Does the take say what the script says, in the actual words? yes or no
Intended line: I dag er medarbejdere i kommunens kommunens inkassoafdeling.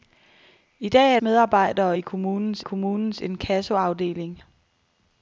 yes